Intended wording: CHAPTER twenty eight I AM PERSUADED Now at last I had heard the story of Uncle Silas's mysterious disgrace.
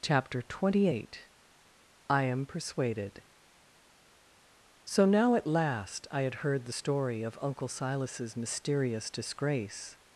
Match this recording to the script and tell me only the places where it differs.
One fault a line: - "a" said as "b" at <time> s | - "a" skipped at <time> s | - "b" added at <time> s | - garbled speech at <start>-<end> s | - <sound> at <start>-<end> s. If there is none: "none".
- "So" added at 4.9 s